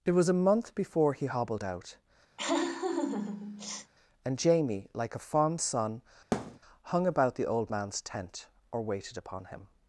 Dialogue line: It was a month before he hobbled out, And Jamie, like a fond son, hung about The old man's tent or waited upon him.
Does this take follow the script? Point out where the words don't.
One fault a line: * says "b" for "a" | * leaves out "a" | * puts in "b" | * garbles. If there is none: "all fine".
all fine